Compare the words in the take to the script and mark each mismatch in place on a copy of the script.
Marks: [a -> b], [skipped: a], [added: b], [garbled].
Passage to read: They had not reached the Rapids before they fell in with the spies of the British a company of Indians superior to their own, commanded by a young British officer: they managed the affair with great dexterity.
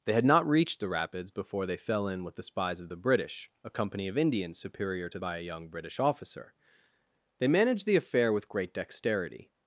They had not reached the Rapids before they fell in with the spies of the British a company of Indians superior to [skipped: their own, commanded] by a young British officer: they managed the affair with great dexterity.